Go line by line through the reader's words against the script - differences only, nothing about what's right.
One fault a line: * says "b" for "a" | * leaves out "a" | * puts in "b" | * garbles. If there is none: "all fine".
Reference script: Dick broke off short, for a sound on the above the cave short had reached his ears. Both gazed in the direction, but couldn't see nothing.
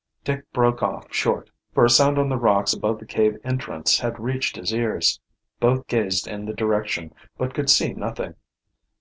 * puts in "rocks"
* says "entrance" for "short"
* says "could" for "couldn't"